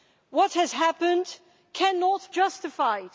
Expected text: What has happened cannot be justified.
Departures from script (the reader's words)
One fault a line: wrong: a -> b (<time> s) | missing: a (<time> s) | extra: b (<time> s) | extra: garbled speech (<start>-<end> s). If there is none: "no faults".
missing: be (2.3 s)